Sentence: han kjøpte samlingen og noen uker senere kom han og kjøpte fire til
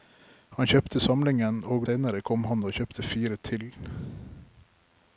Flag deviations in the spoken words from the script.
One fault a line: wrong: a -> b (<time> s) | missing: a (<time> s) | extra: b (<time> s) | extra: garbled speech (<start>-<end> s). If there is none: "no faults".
missing: noen uker (1.9 s)